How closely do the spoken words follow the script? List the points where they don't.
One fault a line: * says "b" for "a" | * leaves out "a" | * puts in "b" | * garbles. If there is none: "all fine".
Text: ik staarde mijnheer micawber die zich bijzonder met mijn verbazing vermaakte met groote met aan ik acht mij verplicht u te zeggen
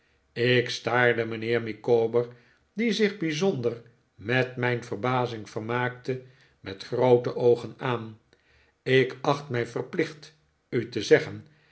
* says "oogen" for "met"